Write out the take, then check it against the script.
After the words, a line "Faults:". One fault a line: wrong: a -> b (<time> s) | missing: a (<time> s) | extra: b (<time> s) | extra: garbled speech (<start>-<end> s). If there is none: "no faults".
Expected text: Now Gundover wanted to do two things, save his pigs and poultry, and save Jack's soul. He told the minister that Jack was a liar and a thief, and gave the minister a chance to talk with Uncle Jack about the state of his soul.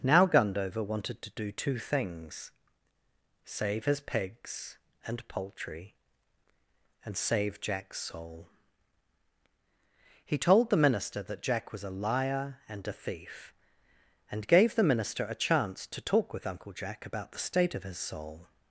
Now Gundover wanted to do two things, save his pigs and poultry, and save Jack's soul. He told the minister that Jack was a liar and a thief, and gave the minister a chance to talk with Uncle Jack about the state of his soul.
Faults:
no faults